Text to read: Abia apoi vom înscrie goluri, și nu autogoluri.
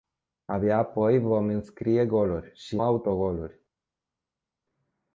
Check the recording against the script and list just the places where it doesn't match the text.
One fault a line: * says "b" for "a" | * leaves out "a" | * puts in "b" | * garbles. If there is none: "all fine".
* leaves out "nu"